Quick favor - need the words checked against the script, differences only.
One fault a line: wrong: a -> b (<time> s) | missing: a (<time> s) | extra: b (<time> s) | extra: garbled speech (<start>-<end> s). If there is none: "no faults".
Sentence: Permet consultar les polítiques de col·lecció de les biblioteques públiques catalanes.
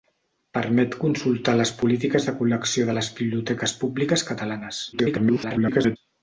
extra: garbled speech (4.9-6.0 s)